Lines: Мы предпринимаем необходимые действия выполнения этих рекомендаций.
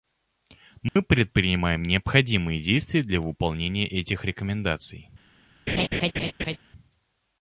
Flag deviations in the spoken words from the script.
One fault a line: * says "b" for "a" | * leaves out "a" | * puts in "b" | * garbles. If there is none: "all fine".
* puts in "для"